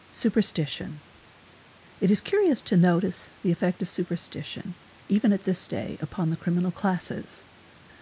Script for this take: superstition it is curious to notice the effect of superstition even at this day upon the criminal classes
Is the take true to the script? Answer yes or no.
yes